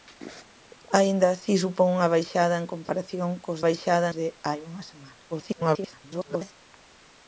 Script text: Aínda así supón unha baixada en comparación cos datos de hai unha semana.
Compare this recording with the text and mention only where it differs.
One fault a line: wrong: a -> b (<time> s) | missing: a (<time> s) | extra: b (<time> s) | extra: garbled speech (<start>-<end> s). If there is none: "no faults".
wrong: datos -> baixada (3.7 s)
extra: garbled speech (5.3-6.5 s)